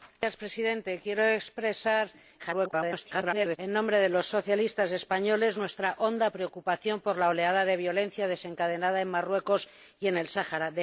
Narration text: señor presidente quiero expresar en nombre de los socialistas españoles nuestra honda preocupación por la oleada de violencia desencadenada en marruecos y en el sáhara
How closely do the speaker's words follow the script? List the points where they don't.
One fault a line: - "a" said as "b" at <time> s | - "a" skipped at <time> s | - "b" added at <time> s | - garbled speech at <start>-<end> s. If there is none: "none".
- garbled speech at 2.4-3.6 s